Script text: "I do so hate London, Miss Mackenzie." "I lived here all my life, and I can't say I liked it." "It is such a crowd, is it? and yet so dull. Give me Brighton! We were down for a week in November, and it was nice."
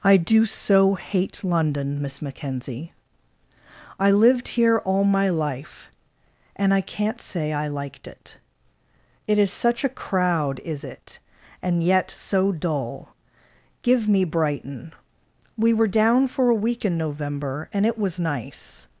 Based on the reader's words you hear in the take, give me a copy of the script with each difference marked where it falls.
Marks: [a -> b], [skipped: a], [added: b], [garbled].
"I do so hate London, Miss Mackenzie." "I lived here all my life, and I can't say I liked it." "It is such a crowd, is it? and yet so dull. Give me Brighton! We were down for a week in November, and it was nice."